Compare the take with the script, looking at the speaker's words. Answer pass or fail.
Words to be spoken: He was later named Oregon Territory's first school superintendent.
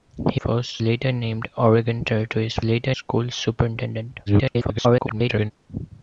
fail